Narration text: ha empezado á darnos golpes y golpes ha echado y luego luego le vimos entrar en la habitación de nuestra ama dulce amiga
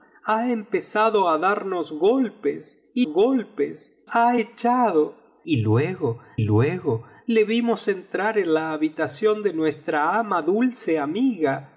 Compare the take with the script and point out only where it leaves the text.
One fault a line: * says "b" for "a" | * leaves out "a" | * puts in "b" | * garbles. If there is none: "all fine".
all fine